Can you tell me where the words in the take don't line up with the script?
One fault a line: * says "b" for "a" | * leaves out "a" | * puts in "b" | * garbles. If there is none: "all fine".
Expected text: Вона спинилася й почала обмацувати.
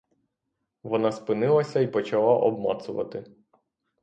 all fine